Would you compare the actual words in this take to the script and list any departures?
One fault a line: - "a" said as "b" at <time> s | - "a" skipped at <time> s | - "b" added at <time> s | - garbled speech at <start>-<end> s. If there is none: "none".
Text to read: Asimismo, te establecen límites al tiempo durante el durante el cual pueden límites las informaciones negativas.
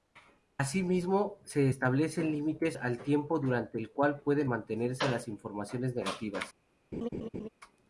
- "te" said as "se" at 1.4 s
- "durante el" skipped at 3.9 s
- "límites" said as "mantenerse" at 4.5 s